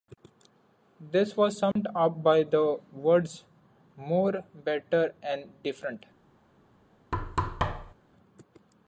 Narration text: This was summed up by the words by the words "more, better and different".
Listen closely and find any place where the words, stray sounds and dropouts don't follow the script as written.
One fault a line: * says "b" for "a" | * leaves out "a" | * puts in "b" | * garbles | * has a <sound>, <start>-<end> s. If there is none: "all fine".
* has a dropout, 1.7-1.8 s
* leaves out "by the words"
* has a thud, 7.1-7.9 s